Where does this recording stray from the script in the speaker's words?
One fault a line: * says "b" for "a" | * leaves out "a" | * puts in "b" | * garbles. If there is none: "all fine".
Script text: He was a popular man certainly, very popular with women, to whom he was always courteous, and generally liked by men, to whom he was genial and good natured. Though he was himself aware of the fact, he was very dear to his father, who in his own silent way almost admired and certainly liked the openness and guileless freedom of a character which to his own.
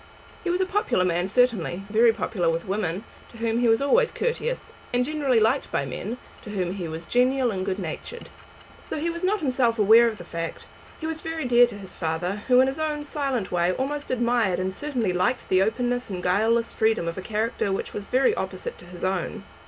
* puts in "not"
* puts in "was very opposite"